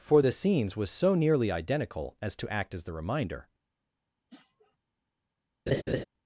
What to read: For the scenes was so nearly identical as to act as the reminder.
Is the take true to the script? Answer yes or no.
yes